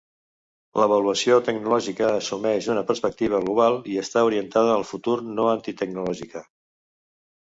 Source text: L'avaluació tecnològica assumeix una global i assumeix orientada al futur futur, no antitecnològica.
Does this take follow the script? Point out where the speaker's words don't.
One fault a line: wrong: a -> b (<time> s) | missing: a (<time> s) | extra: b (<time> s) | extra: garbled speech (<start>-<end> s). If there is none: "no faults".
extra: perspectiva (2.9 s)
wrong: assumeix -> està (4.0 s)
missing: futur (5.2 s)